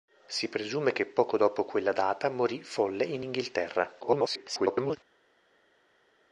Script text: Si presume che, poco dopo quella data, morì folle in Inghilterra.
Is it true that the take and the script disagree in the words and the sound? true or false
true